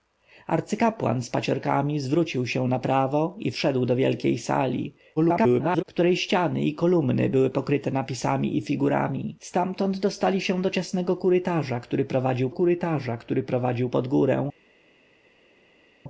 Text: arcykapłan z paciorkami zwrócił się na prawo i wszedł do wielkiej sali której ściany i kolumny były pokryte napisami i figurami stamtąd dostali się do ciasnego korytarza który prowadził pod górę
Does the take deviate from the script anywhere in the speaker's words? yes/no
yes